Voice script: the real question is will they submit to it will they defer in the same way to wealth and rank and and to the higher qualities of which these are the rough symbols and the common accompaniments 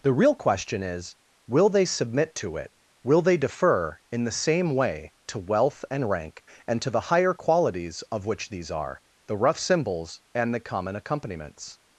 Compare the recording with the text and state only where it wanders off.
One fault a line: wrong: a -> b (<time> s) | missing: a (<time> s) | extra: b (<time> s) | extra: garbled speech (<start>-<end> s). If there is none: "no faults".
missing: and (6.8 s)